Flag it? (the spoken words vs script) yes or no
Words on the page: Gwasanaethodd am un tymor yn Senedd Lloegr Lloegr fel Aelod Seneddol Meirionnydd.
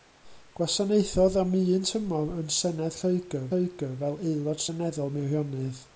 no